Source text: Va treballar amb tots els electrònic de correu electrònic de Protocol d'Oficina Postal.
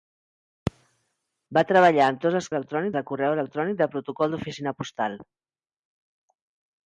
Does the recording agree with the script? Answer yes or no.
yes